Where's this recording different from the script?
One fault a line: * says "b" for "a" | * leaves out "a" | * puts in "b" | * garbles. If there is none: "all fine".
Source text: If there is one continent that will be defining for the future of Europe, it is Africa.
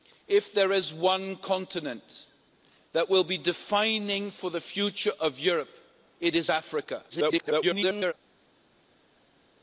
* garbles